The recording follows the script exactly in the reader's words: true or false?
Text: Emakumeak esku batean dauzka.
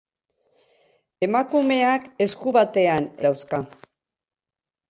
true